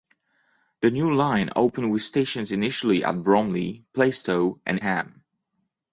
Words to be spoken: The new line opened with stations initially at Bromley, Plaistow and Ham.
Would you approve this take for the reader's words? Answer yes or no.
yes